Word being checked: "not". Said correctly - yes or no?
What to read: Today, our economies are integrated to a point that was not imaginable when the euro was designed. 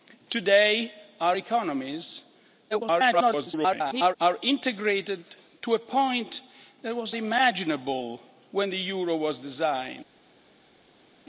no